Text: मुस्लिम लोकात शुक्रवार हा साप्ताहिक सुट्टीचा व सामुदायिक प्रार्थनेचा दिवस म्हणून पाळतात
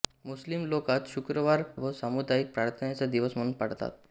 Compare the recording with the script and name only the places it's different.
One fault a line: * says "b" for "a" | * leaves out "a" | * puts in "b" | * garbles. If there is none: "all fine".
* leaves out "हा साप्ताहिक सुट्टीचा"